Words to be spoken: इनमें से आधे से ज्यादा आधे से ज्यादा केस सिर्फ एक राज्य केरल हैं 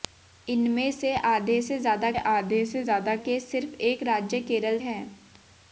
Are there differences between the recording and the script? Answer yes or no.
no